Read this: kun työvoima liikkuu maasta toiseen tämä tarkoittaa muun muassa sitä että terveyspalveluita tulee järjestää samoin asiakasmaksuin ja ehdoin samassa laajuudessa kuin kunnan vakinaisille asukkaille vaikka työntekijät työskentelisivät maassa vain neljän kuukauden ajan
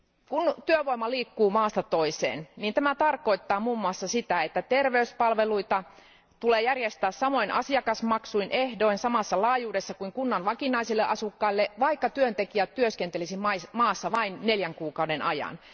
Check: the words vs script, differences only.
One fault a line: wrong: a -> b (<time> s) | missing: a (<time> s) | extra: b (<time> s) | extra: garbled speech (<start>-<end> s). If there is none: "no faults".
no faults